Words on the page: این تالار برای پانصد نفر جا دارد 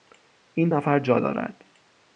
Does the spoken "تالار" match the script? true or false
false